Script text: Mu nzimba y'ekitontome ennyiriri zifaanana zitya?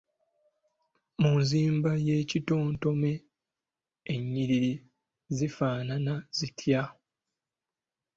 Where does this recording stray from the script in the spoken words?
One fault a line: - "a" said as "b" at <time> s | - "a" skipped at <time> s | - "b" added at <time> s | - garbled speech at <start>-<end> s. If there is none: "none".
none